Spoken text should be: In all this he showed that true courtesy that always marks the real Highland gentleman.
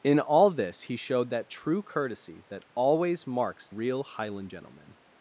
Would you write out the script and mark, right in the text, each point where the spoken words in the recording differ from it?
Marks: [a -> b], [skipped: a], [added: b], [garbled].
In all this he showed that true courtesy that always marks [skipped: the] real Highland gentleman.